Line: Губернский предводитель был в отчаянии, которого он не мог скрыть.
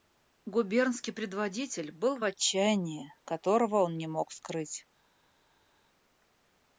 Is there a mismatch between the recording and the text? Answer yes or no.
no